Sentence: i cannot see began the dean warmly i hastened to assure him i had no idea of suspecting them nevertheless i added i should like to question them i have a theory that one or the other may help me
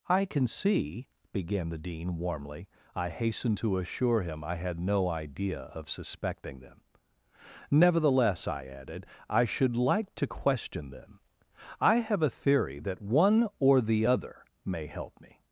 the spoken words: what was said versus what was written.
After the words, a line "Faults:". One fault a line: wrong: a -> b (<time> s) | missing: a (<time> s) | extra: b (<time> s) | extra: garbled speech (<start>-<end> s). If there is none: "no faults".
i can see began the dean warmly i hastened to assure him i had no idea of suspecting them nevertheless i added i should like to question them i have a theory that one or the other may help me
Faults:
wrong: cannot -> can (0.2 s)